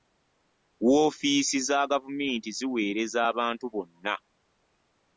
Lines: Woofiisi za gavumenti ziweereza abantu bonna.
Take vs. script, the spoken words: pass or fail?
pass